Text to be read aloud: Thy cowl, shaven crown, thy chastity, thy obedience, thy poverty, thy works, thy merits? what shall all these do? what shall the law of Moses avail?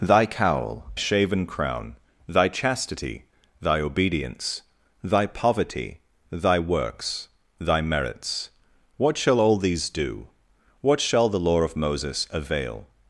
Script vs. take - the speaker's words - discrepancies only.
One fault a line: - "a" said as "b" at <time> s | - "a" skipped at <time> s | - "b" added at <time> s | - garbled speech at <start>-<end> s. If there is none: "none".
none